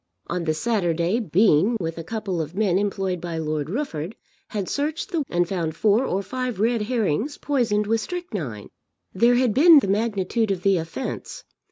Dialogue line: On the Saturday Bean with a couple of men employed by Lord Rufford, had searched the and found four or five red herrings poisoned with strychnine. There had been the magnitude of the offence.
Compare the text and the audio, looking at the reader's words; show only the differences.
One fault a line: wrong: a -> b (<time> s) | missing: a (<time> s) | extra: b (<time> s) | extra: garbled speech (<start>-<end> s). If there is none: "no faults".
no faults